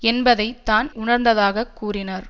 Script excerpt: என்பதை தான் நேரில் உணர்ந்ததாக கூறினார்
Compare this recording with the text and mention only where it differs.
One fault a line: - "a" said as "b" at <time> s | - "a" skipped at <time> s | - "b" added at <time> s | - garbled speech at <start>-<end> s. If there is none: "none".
- "நேரில்" skipped at 0.9 s